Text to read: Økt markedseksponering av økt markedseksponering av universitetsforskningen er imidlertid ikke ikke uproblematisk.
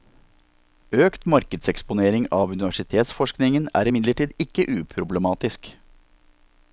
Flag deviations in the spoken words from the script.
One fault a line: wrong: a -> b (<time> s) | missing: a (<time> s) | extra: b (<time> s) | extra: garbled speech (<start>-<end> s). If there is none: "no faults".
missing: økt markedseksponering av (2.5 s)
missing: ikke (4.7 s)